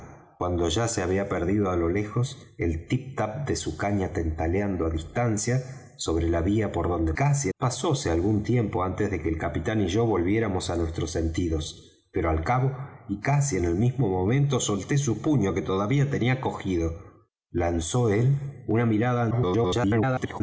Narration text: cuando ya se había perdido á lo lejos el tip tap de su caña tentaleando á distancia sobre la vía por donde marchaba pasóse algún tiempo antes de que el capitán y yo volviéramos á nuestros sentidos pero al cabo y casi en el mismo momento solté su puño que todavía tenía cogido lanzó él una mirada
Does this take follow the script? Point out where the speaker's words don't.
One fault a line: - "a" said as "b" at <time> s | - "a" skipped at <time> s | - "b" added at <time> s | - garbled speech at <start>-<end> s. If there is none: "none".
- "marchaba" said as "casi" at 7.1 s
- garbled speech at 19.3-20.4 s